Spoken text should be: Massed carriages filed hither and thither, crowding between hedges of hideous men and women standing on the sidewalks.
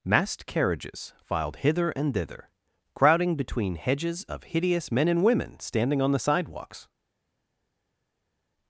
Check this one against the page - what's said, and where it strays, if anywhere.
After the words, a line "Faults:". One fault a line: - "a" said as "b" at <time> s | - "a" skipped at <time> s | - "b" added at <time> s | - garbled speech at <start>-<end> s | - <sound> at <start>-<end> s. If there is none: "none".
Massed carriages filed hither and thither, crowding between hedges of hideous men and women standing on the sidewalks.
Faults:
none